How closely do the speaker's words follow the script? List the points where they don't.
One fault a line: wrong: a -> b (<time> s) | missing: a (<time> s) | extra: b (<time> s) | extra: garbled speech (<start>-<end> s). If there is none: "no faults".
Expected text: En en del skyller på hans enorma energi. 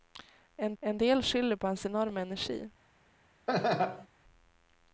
no faults